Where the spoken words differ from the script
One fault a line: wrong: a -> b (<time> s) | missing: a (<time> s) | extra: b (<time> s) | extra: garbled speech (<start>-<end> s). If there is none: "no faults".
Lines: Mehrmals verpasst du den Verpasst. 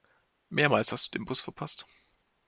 wrong: verpasst -> hast (0.9 s)
extra: Bus (1.3 s)